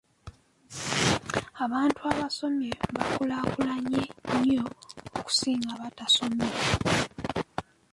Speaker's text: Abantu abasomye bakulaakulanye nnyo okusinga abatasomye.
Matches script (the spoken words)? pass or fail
pass